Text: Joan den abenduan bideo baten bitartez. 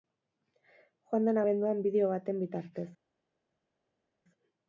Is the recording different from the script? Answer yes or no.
no